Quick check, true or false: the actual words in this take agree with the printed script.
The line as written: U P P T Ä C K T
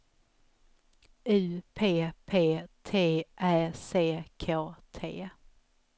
true